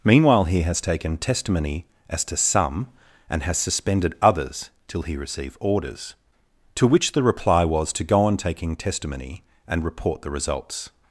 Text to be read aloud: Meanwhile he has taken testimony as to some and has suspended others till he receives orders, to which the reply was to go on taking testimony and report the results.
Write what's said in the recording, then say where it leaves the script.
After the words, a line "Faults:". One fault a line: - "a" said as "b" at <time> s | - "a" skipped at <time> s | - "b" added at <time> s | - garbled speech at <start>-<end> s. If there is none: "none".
Meanwhile he has taken testimony as to some and has suspended others till he receive orders, to which the reply was to go on taking testimony and report the results.
Faults:
- "receives" said as "receive" at 5.2 s